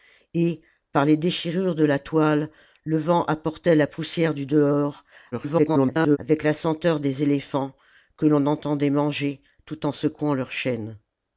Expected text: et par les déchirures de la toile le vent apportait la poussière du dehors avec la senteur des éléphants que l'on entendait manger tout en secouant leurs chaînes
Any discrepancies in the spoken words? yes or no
yes